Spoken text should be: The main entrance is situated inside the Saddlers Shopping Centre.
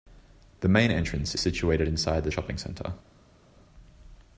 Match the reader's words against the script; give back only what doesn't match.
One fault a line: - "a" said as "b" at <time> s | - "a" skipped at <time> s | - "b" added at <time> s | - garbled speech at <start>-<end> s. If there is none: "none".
- "is" skipped at 1.4 s
- "Saddlers" skipped at 2.3 s